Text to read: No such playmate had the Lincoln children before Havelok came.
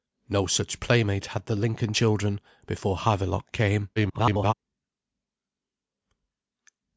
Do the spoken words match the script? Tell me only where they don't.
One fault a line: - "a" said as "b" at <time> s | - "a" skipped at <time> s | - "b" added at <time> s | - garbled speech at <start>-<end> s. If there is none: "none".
- garbled speech at 4.0-4.5 s